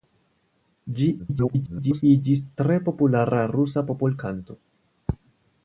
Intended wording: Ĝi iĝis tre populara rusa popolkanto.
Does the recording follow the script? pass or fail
fail